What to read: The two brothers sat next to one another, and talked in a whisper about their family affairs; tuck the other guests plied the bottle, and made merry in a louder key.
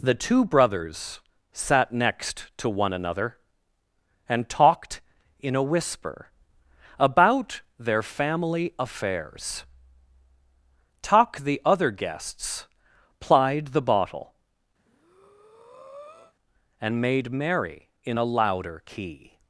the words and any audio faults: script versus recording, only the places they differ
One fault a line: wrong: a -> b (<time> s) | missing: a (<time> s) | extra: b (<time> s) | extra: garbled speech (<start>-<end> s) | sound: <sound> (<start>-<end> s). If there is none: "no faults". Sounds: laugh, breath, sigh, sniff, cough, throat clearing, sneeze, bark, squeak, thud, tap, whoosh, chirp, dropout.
sound: breath (14.8-16.3 s)